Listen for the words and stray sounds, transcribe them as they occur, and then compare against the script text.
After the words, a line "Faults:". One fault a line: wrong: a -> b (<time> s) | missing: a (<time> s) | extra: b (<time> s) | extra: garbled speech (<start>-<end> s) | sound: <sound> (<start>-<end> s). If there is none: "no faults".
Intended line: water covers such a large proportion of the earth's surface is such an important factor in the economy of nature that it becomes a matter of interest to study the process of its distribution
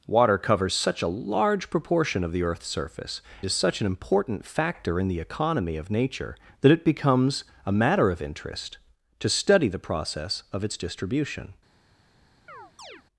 water covers such a large proportion of the earth's surface is such an important factor in the economy of nature that it becomes a matter of interest to study the process of its distribution
Faults:
sound: chirp (12.5-13.0 s)